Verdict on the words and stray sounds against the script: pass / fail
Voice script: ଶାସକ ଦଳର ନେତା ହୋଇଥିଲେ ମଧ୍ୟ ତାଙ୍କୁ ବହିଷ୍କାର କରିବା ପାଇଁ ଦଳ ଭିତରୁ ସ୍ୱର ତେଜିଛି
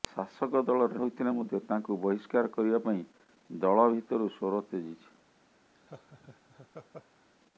fail